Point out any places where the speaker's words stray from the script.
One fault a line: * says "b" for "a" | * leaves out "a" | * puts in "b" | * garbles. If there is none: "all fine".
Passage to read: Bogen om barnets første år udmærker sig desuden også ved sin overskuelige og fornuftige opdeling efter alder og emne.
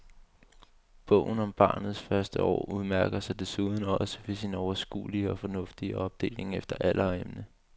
all fine